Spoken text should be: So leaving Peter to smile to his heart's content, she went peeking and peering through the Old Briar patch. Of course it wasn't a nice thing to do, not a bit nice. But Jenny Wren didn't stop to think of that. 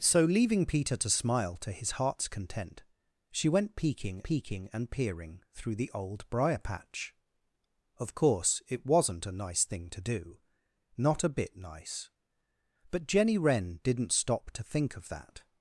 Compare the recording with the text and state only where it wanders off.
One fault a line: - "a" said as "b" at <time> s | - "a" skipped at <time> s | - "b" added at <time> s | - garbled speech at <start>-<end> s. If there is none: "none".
- "peeking" added at 4.2 s